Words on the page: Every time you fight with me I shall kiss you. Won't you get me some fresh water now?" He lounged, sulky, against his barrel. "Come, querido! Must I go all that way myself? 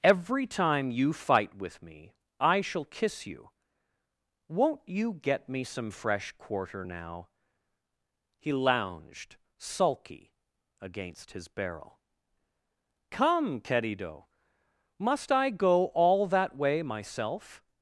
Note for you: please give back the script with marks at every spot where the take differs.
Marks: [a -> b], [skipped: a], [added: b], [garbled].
Every time you fight with me I shall kiss you. Won't you get me some fresh [water -> quarter] now?" He lounged, sulky, against his barrel. "Come, querido! Must I go all that way myself?